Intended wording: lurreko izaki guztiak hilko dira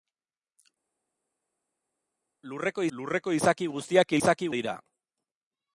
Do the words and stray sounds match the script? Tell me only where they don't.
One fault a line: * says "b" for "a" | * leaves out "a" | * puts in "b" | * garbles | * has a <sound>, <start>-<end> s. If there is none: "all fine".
* puts in "lurreko"
* says "izaki" for "hilko"